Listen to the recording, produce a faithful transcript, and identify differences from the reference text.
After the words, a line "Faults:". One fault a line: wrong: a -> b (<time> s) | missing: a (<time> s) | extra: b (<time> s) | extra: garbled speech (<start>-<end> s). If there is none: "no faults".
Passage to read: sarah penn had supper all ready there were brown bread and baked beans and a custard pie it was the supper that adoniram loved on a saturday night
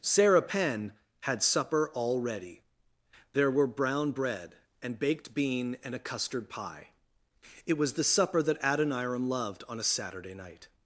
sarah penn had supper all ready there were brown bread and baked bean and a custard pie it was the supper that adoniram loved on a saturday night
Faults:
wrong: beans -> bean (5.3 s)